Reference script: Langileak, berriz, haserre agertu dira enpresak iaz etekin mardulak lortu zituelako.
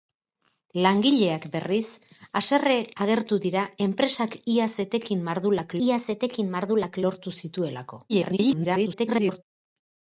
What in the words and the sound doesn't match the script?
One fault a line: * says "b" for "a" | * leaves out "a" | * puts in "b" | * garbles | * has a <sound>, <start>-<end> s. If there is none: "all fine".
* puts in "iaz etekin mardulak"
* garbles